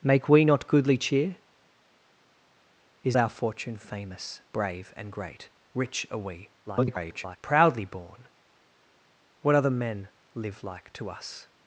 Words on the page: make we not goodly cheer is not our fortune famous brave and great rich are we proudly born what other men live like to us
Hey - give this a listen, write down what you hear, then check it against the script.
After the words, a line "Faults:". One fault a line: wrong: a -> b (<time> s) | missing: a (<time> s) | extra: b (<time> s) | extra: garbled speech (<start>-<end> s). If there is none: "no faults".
make we not goodly cheer is our fortune famous brave and great rich are we [garbled] proudly born what other men live like to us
Faults:
missing: not (3.2 s)
extra: garbled speech (6.7-7.4 s)